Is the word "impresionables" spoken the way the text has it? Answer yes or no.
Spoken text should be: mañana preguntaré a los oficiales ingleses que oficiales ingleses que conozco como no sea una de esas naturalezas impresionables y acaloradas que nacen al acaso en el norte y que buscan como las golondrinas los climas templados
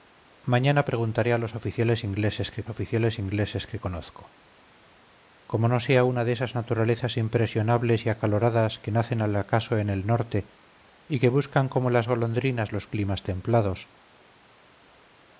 yes